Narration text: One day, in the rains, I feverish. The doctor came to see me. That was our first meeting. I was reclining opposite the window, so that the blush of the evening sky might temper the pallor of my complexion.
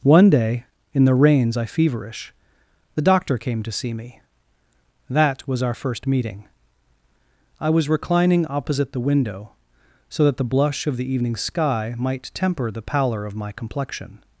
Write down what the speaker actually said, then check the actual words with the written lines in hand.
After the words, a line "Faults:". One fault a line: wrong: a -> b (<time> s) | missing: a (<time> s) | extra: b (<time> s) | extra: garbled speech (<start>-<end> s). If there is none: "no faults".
One day, in the rains, I feverish. The doctor came to see me. That was our first meeting. I was reclining opposite the window, so that the blush of the evening sky might temper the pallor of my complexion.
Faults:
no faults